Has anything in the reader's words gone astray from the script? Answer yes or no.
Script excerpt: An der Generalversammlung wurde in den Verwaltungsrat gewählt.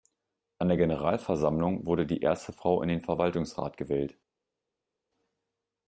yes